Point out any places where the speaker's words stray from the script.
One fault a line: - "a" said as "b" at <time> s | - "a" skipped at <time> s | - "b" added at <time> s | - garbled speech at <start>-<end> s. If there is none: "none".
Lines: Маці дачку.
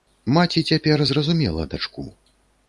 - "цяпер зразумела" added at 0.7 s